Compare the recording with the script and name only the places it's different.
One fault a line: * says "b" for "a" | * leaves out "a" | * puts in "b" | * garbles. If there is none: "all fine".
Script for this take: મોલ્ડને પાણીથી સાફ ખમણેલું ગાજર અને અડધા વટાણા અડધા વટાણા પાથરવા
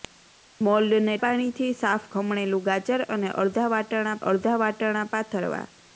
all fine